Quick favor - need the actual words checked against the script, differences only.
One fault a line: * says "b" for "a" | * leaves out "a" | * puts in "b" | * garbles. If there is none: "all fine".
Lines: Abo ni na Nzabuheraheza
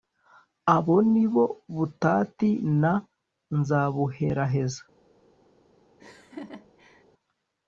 * puts in "bo Butati"